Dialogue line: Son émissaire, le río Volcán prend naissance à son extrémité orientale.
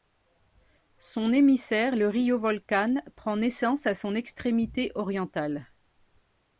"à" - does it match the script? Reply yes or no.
yes